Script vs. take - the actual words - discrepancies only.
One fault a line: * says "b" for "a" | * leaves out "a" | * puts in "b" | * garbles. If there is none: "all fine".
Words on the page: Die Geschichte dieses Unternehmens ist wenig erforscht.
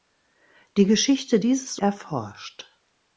* leaves out "Unternehmens ist wenig"